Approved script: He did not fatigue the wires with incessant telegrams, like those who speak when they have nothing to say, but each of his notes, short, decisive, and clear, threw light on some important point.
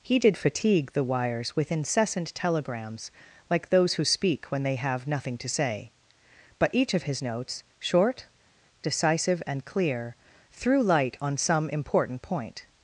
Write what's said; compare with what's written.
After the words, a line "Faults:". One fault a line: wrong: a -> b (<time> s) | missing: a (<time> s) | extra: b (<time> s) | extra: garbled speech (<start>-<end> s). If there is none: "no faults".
He did fatigue the wires with incessant telegrams, like those who speak when they have nothing to say, but each of his notes, short, decisive, and clear, threw light on some important point.
Faults:
missing: not (0.4 s)